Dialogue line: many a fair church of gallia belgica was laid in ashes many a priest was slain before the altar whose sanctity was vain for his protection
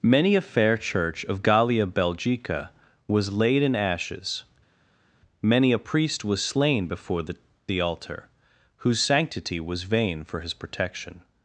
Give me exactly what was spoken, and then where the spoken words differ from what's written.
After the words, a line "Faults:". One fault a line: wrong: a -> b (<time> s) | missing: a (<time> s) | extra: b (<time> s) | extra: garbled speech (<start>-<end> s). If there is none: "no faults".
many a fair church of gallia belgica was laid in ashes many a priest was slain before the the altar whose sanctity was vain for his protection
Faults:
extra: the (7.6 s)